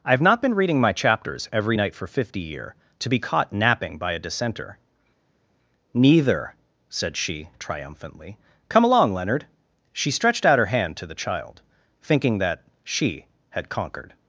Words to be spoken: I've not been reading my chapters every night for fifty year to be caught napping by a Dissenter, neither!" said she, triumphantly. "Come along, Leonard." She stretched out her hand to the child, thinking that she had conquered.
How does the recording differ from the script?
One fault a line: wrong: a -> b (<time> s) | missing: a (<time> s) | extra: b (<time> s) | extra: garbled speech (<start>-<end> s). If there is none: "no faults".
no faults